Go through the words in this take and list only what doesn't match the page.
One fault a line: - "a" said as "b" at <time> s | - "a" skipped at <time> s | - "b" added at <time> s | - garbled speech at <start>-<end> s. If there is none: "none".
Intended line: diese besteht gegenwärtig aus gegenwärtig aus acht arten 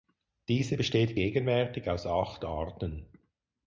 - "gegenwärtig aus" skipped at 2.0 s